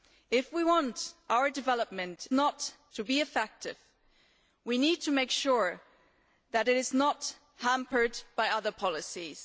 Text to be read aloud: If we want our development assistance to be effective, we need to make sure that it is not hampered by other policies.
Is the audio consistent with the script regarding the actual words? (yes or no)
no